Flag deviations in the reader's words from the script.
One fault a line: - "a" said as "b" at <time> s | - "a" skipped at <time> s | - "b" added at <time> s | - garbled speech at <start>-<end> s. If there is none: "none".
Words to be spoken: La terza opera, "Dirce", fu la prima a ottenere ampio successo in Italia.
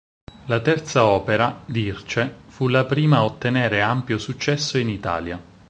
none